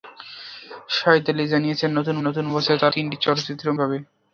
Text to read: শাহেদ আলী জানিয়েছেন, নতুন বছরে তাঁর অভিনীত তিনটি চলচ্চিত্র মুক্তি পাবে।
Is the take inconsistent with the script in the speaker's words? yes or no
yes